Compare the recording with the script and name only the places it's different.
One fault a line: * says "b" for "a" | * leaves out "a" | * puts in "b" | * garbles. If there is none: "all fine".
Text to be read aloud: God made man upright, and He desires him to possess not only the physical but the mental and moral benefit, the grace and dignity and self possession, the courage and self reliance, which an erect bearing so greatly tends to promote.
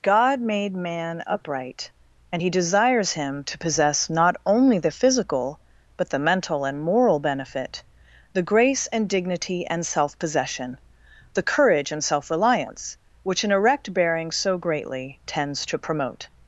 all fine